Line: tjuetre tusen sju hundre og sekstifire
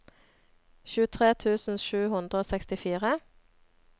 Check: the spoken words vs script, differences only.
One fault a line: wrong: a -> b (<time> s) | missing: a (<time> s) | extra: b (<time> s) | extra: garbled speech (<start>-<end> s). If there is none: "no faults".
no faults